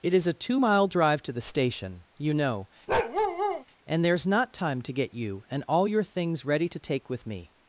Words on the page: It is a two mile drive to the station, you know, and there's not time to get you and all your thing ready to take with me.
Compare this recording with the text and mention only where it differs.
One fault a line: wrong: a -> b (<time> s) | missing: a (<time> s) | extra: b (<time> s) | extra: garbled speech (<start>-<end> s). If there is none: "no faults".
wrong: thing -> things (6.0 s)